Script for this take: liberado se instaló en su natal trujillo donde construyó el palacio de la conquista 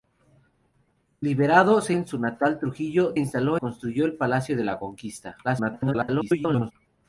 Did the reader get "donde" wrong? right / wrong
wrong